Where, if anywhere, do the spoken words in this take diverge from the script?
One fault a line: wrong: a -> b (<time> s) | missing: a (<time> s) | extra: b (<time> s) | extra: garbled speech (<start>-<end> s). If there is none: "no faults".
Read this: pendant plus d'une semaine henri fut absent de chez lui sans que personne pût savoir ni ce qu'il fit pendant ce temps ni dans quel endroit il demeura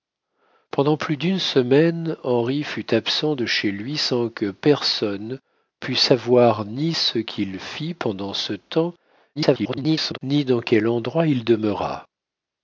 extra: garbled speech (9.4-10.2 s)